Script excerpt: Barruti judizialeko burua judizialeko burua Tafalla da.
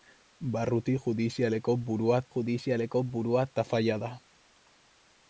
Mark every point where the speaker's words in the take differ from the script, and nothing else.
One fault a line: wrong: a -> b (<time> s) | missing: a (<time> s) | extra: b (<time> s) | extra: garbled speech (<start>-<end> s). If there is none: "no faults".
no faults